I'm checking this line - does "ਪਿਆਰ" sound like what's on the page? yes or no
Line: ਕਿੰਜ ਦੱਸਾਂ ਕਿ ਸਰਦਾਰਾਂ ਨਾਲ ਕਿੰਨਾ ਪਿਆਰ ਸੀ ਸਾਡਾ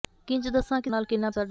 no